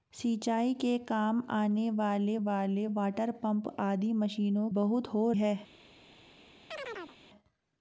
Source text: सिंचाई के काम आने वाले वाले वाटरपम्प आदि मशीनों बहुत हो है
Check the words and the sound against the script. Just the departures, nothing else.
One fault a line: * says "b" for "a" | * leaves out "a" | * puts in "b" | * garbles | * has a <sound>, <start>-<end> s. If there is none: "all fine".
* has a chirp, 6.7-7.2 s